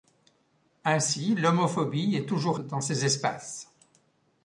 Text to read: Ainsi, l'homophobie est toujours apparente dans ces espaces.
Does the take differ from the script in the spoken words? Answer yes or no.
yes